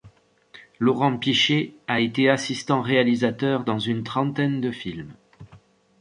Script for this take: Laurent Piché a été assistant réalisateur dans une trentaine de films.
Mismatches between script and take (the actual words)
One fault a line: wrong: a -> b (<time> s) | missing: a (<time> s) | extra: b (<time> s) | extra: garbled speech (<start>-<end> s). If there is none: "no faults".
no faults